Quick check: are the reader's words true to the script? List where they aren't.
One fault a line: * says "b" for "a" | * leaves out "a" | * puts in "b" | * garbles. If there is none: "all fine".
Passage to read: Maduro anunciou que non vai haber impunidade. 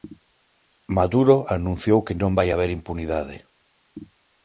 all fine